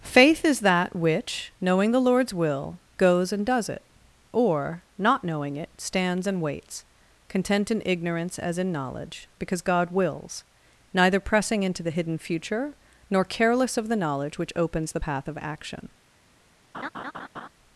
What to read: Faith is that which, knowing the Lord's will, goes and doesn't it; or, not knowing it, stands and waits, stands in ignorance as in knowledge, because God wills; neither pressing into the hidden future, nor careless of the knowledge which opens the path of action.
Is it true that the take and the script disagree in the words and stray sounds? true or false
true